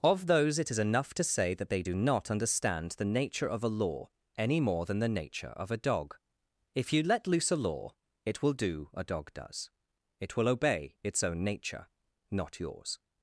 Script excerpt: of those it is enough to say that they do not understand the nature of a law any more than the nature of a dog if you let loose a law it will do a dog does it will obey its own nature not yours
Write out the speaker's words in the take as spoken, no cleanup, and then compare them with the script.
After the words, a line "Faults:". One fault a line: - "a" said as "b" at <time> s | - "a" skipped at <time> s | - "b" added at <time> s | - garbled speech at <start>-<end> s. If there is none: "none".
of those it is enough to say that they do not understand the nature of a law any more than the nature of a dog if you let loose a law it will do a dog does it will obey its own nature not yours
Faults:
none